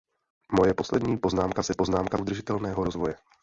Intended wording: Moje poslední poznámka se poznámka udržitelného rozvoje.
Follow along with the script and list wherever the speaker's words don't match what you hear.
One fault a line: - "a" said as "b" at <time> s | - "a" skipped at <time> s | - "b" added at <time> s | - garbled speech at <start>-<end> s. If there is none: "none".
none